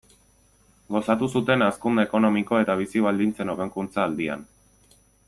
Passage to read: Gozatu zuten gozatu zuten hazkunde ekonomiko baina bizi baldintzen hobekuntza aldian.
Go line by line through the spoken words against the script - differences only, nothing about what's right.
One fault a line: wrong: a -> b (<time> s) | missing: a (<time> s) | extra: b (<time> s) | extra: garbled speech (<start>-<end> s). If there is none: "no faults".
missing: gozatu zuten (1.6 s)
wrong: baina -> eta (2.6 s)